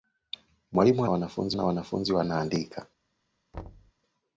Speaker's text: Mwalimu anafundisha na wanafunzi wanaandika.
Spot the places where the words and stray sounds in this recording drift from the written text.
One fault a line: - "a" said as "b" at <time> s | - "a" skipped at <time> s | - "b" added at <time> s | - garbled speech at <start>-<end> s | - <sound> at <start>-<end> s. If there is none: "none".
- "anafundisha" said as "wanafunzi" at 1.1 s
- thud at 3.5-3.9 s